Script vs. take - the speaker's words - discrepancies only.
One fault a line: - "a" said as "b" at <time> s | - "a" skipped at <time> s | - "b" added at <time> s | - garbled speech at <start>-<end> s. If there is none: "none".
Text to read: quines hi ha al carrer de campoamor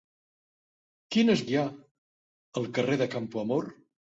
none